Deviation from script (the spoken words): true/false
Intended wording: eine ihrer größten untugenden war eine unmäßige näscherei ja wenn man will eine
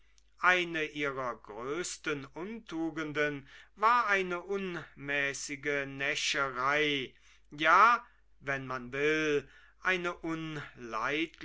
false